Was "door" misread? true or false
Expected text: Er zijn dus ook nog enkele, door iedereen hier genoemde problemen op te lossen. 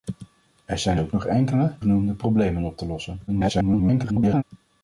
true